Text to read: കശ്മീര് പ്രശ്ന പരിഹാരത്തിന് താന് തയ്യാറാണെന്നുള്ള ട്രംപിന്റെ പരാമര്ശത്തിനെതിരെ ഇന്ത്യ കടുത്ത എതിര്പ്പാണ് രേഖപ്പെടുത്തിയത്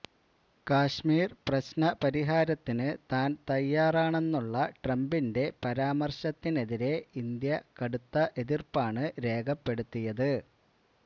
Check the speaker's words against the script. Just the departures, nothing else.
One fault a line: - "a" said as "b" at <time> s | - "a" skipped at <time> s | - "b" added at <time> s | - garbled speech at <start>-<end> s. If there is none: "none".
none